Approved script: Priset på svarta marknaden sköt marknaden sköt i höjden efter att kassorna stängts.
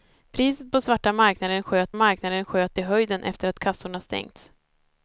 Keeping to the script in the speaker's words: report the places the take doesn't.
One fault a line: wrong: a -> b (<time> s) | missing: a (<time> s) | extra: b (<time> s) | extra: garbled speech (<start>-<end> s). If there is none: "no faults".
no faults